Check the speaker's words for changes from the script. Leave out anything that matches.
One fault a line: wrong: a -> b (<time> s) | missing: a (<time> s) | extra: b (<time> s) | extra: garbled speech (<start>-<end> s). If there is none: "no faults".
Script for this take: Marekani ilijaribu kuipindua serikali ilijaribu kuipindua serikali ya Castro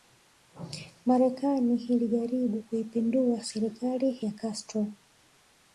missing: ilijaribu kuipindua serikali (4.2 s)